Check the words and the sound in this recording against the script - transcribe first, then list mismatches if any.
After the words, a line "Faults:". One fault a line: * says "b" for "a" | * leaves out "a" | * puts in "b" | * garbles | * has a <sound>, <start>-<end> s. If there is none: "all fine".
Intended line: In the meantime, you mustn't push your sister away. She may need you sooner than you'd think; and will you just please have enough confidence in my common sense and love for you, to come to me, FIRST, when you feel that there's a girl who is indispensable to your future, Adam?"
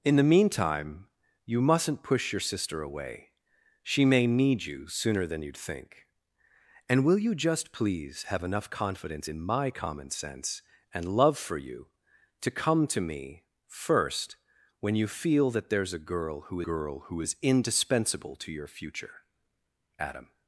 In the meantime, you mustn't push your sister away. She may need you sooner than you'd think; and will you just please have enough confidence in my common sense and love for you, to come to me, FIRST, when you feel that there's a girl who girl who is indispensable to your future, Adam?"
Faults:
* puts in "girl who"